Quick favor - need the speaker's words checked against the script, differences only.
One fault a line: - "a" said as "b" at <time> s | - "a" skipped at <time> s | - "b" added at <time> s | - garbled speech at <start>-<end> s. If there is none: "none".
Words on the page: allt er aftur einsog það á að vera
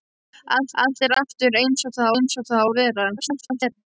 - "allt" added at 0.8 s
- "einsog það" added at 2.1 s
- garbled speech at 3.2-3.7 s